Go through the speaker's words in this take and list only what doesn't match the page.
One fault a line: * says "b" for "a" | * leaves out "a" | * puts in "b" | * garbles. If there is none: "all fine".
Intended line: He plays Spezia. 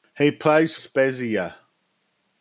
all fine